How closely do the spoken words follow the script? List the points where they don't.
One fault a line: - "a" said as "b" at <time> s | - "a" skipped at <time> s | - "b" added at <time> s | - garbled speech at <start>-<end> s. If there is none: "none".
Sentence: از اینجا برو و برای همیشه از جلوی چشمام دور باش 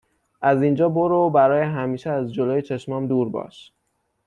none